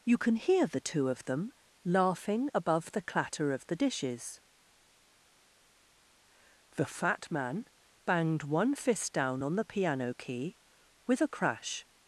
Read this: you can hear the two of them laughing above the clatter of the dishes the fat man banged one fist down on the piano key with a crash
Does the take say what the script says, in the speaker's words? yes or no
yes